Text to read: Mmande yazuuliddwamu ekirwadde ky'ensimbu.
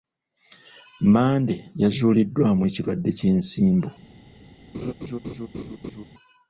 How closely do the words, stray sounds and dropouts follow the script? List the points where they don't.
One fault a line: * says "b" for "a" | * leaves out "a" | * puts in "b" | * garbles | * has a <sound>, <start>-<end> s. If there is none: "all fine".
* has a laugh, 4.7-6.0 s